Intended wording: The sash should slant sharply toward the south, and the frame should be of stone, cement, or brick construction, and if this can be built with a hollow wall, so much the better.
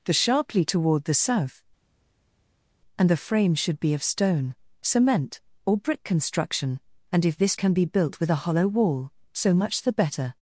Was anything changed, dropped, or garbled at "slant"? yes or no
yes